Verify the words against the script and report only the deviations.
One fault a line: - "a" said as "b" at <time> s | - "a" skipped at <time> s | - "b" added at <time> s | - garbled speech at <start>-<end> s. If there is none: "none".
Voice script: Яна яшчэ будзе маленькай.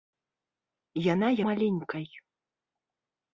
- "яшчэ будзе" skipped at 1.3 s